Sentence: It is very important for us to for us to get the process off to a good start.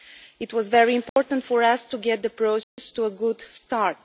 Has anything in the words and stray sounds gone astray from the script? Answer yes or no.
yes